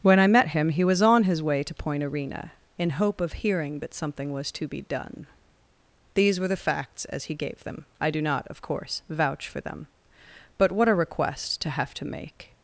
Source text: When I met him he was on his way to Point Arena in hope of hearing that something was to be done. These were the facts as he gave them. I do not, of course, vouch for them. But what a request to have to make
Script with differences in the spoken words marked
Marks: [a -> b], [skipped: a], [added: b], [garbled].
When I met him he was on his way to Point Arena in hope of hearing that something was to be done. These were the facts as he gave them. I do not, of course, vouch for them. But what a request to have to make